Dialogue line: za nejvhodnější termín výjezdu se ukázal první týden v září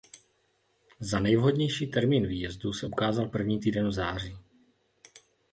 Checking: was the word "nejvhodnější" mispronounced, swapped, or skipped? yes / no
no